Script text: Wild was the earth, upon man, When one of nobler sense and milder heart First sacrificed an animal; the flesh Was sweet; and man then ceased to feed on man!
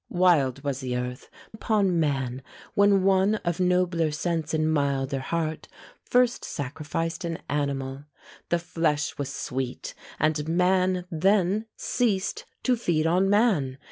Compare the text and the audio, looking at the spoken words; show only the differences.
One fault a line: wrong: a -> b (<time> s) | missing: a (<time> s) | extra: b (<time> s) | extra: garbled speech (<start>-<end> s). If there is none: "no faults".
no faults